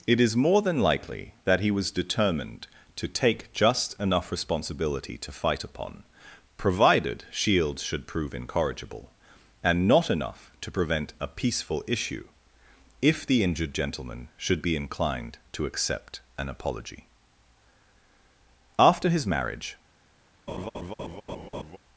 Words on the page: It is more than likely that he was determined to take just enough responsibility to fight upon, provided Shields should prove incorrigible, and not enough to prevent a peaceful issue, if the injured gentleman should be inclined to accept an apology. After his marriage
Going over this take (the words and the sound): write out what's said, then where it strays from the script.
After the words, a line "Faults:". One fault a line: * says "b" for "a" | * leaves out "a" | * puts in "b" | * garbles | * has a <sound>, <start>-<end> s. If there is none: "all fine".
It is more than likely that he was determined to take just enough responsibility to fight upon, provided Shields should prove incorrigible, and not enough to prevent a peaceful issue, if the injured gentleman should be inclined to accept an apology. After his marriage
Faults:
* has a laugh, 20.5-21.8 s